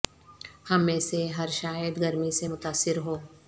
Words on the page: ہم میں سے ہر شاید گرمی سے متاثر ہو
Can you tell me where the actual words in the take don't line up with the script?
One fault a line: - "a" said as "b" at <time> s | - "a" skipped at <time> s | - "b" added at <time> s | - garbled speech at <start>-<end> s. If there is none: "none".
none